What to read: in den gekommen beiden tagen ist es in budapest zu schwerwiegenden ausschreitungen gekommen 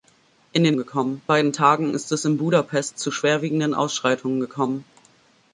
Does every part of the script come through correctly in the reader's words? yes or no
yes